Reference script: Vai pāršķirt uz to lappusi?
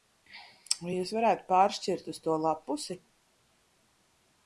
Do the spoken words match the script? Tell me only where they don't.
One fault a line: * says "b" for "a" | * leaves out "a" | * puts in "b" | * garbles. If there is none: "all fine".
* puts in "jūs varētu"